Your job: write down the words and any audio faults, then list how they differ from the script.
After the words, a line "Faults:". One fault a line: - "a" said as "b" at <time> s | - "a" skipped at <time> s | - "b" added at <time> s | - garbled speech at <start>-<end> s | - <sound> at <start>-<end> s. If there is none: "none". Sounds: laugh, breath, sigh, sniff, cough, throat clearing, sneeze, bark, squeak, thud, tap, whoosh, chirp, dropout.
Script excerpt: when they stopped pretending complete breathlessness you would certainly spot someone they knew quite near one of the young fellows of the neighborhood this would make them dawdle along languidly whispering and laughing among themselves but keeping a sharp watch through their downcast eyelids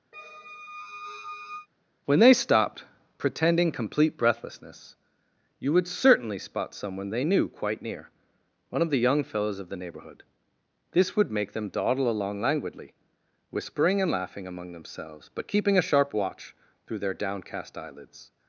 when they stopped pretending complete breathlessness you would certainly spot someone they knew quite near one of the young fellows of the neighborhood this would make them dawdle along languidly whispering and laughing among themselves but keeping a sharp watch through their downcast eyelids
Faults:
- squeak at 0.1-1.7 s